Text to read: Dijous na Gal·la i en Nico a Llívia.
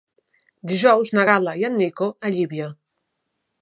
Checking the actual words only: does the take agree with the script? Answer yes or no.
yes